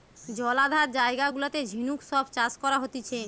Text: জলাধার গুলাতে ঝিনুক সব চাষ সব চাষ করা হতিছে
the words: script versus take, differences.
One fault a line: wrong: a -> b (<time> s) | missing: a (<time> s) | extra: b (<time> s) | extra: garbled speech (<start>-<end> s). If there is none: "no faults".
extra: জায়গা (0.9 s)
missing: সব চাষ (2.5 s)